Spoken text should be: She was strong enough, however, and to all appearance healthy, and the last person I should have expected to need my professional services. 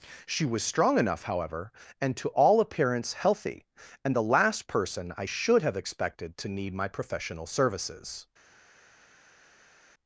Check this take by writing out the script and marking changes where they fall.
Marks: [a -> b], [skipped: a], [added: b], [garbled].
She was strong enough, however, and to all appearance healthy, and the last person I should have expected to need my professional services.